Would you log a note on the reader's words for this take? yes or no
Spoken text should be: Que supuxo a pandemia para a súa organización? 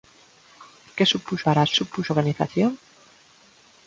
yes